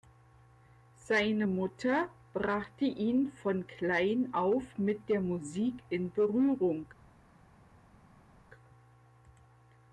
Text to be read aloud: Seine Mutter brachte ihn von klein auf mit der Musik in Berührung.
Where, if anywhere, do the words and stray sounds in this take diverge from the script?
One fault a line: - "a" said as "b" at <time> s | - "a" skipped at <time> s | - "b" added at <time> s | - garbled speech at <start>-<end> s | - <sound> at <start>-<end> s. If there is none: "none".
none